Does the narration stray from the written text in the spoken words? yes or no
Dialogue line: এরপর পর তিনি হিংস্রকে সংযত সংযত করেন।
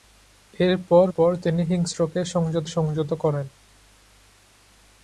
no